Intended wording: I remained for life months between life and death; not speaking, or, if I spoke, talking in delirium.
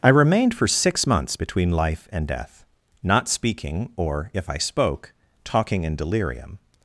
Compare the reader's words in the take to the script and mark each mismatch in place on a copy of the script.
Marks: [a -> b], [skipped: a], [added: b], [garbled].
I remained for [life -> six] months between life and death; not speaking, or, if I spoke, talking in delirium.